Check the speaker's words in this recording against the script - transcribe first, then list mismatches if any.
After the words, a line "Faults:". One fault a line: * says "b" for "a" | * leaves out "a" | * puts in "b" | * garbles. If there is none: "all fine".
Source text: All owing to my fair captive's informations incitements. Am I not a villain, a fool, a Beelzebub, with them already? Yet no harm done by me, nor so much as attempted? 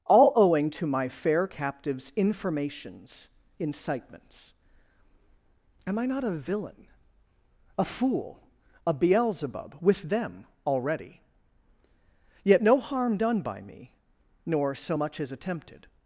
All owing to my fair captive's informations incitements. Am I not a villain, a fool, a Beelzebub, with them already? Yet no harm done by me, nor so much as attempted?
Faults:
all fine